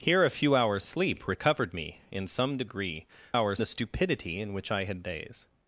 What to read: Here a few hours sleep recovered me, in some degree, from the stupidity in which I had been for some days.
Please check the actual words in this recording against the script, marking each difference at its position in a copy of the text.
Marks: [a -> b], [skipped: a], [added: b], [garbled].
Here a few hours sleep recovered me, in some degree, [from -> hours] the stupidity in which I had [skipped: been for some] days.